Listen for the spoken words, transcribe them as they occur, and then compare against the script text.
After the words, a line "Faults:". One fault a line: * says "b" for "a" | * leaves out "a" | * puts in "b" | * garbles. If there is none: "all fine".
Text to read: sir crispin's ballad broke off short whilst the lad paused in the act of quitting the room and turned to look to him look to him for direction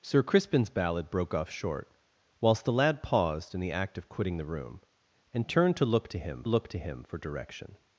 sir crispin's ballad broke off short whilst the lad paused in the act of quitting the room and turned to look to him look to him for direction
Faults:
all fine